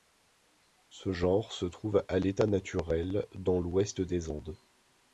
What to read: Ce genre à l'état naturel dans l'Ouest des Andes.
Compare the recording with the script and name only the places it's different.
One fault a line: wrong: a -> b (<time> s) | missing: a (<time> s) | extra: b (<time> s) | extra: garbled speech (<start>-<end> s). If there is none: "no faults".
extra: se trouve (1.5 s)